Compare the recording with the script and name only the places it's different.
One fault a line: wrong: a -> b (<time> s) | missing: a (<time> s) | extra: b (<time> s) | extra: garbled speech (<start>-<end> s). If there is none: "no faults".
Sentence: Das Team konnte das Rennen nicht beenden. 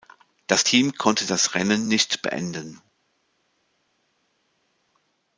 no faults